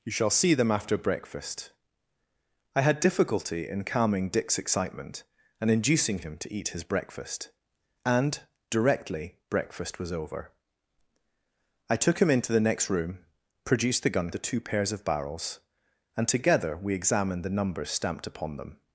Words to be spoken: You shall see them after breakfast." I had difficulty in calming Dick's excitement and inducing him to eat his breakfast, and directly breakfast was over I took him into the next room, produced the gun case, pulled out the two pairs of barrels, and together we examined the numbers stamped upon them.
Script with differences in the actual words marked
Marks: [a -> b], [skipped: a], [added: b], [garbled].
You shall see them after breakfast." I had difficulty in calming Dick's excitement and inducing him to eat his breakfast, and directly breakfast was over I took him into the next room, produced the gun [skipped: case, pulled out] the two pairs of barrels, and together we examined the numbers stamped upon them.